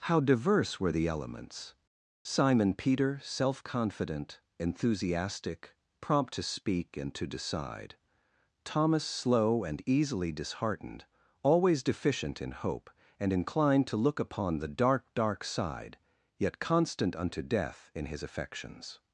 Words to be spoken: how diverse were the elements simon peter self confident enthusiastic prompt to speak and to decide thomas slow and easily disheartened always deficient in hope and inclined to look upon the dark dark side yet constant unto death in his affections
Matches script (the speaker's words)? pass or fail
pass